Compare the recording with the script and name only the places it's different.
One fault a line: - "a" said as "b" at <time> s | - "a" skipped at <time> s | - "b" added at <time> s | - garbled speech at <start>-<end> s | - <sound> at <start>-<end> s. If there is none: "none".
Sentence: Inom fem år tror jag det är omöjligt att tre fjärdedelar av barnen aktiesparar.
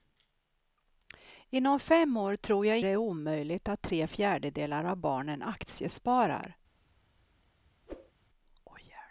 - whoosh at 7.9-8.1 s